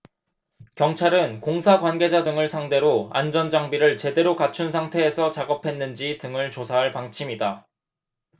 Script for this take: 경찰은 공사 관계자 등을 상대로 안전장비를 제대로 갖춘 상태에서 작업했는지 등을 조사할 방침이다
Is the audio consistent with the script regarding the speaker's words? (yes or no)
yes